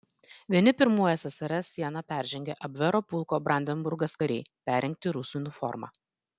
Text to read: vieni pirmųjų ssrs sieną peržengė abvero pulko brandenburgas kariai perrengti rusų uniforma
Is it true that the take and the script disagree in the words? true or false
false